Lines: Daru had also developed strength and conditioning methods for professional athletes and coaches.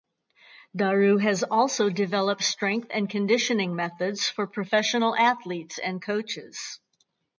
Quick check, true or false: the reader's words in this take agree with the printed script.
false